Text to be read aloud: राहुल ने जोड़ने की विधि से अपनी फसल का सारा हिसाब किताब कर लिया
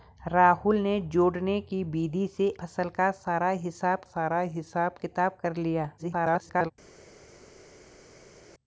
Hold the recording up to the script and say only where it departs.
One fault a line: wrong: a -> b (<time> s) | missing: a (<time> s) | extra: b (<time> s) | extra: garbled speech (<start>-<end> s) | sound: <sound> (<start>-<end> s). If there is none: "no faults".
missing: अपनी (2.5 s)
extra: सारा हिसाब (4.1 s)
extra: garbled speech (6.0-6.7 s)